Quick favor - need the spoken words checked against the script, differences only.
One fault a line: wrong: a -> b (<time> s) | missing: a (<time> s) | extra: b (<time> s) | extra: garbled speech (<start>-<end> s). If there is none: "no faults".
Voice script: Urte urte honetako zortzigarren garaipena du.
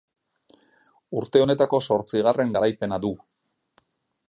missing: urte (1.4 s)